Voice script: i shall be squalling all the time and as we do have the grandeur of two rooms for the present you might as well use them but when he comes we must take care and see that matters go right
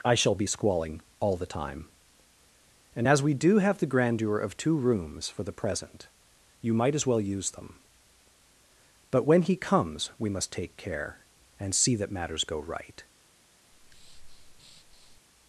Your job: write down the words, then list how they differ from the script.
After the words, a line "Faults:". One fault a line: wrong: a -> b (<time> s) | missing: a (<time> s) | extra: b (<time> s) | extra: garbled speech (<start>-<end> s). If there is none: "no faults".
i shall be squalling all the time and as we do have the grandeur of two rooms for the present you might as well use them but when he comes we must take care and see that matters go right
Faults:
no faults